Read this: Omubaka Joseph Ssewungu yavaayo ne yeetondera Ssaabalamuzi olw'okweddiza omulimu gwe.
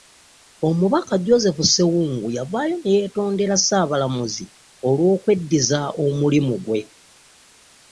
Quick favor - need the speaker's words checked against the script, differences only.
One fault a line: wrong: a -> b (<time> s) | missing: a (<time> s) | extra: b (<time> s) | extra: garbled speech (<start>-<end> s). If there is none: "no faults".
no faults